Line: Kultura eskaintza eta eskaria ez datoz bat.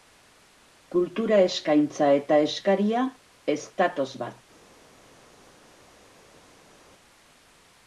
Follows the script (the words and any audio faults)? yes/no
yes